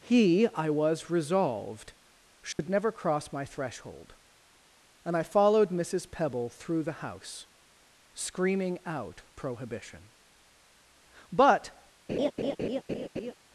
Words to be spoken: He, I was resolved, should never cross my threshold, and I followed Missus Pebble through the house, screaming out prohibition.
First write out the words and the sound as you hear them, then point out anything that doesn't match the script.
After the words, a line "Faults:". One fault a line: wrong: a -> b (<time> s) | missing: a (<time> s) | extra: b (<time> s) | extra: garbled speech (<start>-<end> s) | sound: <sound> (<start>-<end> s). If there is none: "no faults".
He, I was resolved, should never cross my threshold, and I followed Missus Pebble through the house, screaming out prohibition. But
Faults:
sound: dropout (2.5-2.6 s)
extra: But (11.3 s)
sound: laugh (12.1-13.3 s)